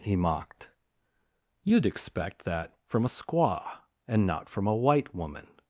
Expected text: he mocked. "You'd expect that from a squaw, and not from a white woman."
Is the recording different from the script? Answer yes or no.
no